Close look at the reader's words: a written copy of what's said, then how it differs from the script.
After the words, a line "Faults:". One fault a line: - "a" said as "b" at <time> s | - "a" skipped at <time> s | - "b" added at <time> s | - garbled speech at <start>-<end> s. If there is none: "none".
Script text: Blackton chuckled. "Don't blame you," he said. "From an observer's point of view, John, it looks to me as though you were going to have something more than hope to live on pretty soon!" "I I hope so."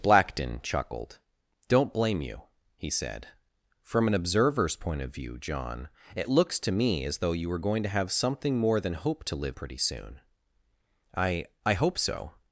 Blackton chuckled. "Don't blame you," he said. "From an observer's point of view, John, it looks to me as though you were going to have something more than hope to live pretty soon!" "I I hope so."
Faults:
- "on" skipped at 9.6 s